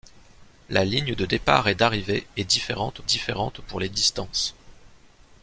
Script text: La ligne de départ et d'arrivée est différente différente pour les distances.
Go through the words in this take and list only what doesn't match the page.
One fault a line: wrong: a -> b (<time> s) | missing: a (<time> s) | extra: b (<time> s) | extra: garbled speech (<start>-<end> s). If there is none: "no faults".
no faults